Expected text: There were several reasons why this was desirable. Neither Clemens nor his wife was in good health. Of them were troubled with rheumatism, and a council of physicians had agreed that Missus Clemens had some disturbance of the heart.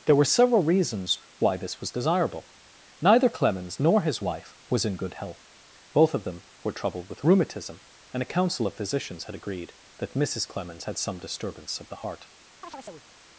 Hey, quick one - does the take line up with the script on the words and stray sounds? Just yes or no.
no